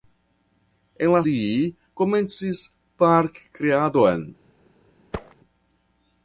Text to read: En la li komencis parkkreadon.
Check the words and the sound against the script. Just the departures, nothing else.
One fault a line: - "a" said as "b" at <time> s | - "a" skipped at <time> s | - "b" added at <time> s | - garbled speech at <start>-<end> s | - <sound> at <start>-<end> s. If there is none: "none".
- thud at 5.1-5.4 s